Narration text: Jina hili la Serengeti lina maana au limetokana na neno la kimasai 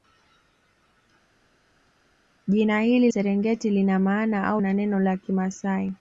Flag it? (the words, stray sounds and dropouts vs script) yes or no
yes